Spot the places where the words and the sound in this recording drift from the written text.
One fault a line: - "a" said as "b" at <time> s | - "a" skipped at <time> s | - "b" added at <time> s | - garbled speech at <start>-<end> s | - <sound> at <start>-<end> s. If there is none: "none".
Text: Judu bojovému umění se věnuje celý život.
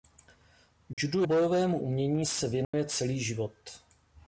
- dropout at 0.9-1.0 s
- dropout at 2.6-2.7 s